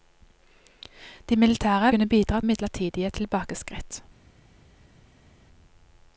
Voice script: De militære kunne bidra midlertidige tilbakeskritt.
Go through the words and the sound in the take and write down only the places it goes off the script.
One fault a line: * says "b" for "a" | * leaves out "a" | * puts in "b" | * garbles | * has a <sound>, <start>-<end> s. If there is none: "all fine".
all fine